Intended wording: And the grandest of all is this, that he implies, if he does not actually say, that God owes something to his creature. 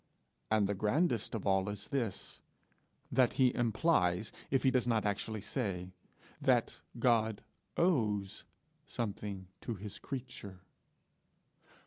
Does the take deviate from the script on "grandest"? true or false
false